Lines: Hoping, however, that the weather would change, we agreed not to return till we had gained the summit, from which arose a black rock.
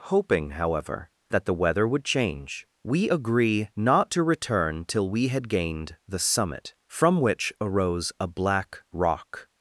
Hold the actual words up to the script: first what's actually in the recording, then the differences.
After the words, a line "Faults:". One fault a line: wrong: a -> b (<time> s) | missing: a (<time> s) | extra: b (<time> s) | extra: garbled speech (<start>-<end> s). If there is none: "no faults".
Hoping, however, that the weather would change, we agree not to return till we had gained the summit, from which arose a black rock.
Faults:
wrong: agreed -> agree (3.1 s)